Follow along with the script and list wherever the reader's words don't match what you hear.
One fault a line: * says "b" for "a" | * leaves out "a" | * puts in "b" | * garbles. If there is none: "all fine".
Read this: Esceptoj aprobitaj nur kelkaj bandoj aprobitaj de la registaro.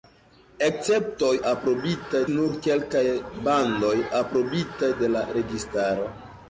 all fine